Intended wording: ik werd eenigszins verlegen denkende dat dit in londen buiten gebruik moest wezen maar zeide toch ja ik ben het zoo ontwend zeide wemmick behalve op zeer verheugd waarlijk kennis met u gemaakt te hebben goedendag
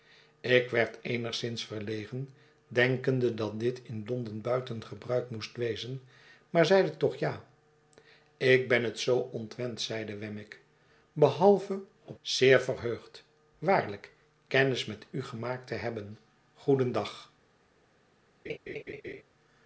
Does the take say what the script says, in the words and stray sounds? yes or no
no